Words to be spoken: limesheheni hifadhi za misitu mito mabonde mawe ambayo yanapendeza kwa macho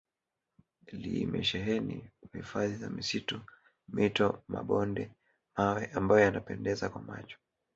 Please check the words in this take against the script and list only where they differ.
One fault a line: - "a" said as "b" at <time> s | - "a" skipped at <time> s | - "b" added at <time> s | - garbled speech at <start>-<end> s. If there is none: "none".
none